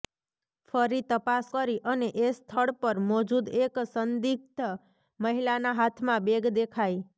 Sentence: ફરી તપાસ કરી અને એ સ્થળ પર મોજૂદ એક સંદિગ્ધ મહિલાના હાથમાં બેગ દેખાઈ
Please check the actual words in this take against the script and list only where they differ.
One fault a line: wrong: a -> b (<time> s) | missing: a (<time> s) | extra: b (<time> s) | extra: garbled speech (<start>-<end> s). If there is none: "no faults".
no faults